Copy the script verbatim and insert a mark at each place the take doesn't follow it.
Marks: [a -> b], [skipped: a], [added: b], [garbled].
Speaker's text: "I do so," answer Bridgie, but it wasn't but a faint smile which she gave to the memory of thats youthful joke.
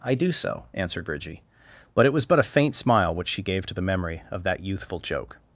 "I do so," [answer -> answered] Bridgie, but it [wasn't -> was] but a faint smile which she gave to the memory of [thats -> that] youthful joke.